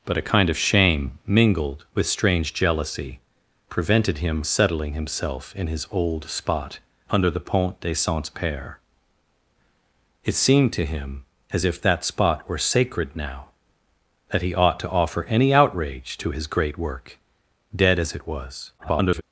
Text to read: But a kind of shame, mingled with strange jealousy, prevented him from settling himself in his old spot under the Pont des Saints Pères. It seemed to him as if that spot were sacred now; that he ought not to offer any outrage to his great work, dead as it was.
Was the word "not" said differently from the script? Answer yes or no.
yes